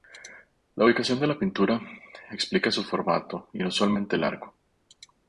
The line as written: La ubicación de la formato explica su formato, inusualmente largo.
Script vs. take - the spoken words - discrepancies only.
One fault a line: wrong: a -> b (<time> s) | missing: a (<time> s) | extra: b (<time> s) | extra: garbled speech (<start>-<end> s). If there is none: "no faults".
wrong: formato -> pintura (1.4 s)